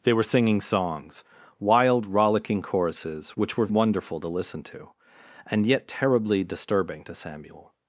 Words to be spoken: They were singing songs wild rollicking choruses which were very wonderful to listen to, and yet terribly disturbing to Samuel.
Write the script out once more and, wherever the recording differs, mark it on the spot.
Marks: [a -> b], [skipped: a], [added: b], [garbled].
They were singing songs wild rollicking choruses which were [skipped: very] wonderful to listen to, and yet terribly disturbing to Samuel.